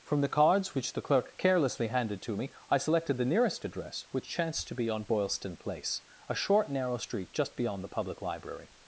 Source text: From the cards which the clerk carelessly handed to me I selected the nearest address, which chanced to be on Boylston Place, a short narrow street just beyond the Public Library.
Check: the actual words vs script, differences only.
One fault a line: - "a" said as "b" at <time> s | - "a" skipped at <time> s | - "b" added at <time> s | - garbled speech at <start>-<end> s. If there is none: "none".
none